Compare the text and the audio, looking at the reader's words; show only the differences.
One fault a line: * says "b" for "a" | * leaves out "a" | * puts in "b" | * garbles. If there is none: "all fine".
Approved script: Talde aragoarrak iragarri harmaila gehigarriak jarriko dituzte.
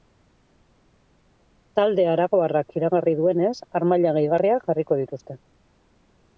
* puts in "duenez"